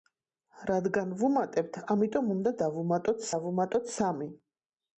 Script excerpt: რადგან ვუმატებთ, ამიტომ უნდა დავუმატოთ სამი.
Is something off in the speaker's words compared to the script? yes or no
yes